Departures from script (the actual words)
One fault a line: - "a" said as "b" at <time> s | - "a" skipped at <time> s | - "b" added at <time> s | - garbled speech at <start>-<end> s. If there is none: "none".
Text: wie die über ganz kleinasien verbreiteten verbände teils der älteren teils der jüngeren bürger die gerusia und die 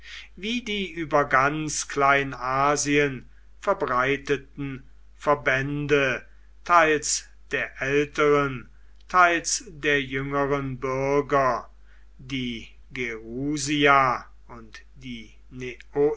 none